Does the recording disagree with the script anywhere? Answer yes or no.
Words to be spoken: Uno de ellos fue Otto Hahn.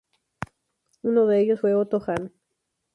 no